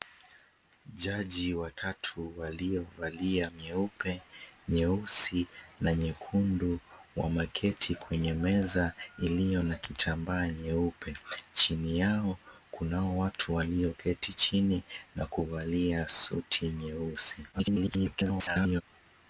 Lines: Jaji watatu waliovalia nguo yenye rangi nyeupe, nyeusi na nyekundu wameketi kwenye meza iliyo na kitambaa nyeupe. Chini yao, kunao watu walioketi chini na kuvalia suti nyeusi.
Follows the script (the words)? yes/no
no